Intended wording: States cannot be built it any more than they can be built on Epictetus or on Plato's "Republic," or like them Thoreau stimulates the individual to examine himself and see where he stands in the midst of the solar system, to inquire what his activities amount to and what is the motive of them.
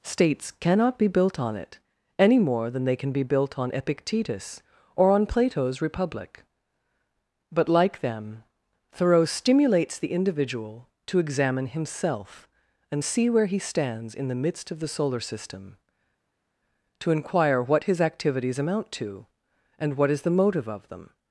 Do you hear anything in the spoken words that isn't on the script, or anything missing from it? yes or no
yes